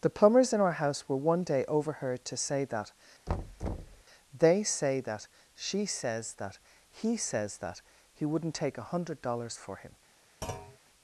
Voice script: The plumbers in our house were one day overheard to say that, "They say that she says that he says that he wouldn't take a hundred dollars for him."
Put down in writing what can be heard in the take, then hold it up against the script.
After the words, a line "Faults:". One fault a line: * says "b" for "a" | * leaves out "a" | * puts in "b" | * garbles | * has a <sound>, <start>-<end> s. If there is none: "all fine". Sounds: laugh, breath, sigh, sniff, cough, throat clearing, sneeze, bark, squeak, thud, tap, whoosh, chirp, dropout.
The plumbers in our house were one day overheard to say that, "They say that she says that he says that he wouldn't take a hundred dollars for him."
Faults:
* has a thud, 3.3-4.0 s
* has a thud, 10.4-10.8 s